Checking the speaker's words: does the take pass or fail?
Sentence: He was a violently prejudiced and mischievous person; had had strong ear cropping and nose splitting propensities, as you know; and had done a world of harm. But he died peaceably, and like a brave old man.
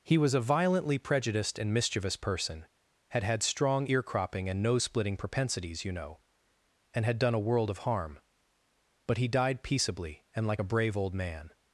fail